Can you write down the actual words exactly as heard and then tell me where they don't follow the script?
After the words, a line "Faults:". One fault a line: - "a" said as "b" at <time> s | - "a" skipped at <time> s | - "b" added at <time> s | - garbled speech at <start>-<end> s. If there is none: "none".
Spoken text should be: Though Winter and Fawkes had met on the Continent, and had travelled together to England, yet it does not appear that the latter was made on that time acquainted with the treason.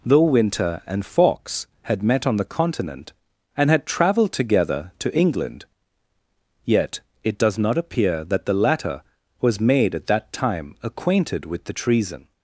Though Winter and Fawkes had met on the Continent, and had travelled together to England, yet it does not appear that the latter was made at that time acquainted with the treason.
Faults:
- "on" said as "at" at 9.9 s